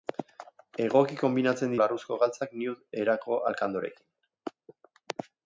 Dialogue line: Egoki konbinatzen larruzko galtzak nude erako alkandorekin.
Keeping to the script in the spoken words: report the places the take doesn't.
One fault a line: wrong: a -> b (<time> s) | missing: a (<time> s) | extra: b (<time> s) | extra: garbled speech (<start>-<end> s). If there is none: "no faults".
no faults